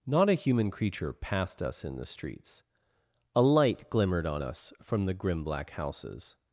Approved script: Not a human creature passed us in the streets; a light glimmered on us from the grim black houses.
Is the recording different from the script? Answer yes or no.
no